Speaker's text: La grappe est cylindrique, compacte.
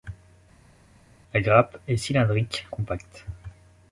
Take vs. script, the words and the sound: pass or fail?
pass